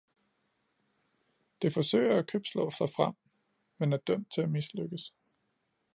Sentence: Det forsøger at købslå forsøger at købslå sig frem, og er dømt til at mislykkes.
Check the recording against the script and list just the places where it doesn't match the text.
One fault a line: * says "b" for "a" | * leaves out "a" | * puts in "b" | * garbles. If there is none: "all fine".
* leaves out "forsøger at købslå"
* says "men" for "og"